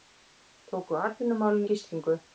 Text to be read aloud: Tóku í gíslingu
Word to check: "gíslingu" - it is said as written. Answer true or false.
true